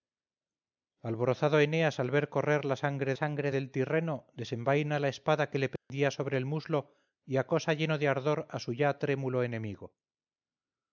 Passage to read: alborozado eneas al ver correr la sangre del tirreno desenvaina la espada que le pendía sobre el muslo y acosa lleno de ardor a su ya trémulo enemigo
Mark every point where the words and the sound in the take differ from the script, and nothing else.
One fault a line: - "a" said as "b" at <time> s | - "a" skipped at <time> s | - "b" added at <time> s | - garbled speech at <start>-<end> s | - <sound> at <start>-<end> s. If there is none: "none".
- "sangre" added at 3.1 s
- dropout at 5.8-5.9 s